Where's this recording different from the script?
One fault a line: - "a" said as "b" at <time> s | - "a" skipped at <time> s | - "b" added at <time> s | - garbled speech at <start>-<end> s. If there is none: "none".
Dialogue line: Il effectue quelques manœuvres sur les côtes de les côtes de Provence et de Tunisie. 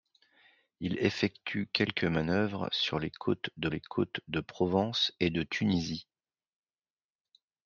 none